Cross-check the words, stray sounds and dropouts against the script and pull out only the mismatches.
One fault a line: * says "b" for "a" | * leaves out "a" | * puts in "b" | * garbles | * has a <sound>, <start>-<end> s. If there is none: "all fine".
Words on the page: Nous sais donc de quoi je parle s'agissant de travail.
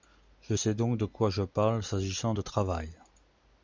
* says "Je" for "Nous"